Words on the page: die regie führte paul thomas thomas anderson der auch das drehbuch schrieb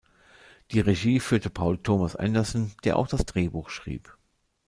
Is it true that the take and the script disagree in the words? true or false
true